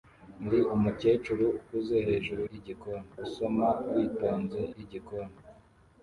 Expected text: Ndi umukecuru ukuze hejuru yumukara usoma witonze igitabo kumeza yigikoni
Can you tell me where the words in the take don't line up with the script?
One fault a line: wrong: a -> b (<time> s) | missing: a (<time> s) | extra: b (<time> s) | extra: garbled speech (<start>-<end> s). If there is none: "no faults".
wrong: yumukara -> yigikoni (2.5 s)
missing: igitabo kumeza (4.6 s)